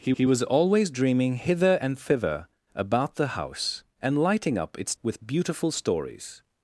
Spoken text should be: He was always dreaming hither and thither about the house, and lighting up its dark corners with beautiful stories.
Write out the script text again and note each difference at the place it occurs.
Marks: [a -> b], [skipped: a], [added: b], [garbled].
He [added: he] was always dreaming hither and thither about the house, and lighting up its [skipped: dark corners] with beautiful stories.